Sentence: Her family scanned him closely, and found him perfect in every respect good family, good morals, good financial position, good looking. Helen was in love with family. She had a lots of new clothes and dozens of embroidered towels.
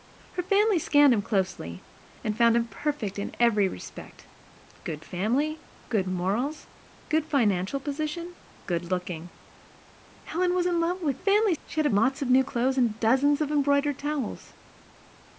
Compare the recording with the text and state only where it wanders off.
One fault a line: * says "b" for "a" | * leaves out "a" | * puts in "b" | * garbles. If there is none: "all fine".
all fine